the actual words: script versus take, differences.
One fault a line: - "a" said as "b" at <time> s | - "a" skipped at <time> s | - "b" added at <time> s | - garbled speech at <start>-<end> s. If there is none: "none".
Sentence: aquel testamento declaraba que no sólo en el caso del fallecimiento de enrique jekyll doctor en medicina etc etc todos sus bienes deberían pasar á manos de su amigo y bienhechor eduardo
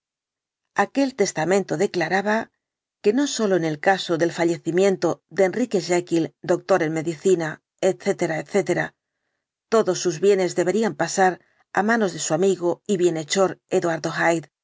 none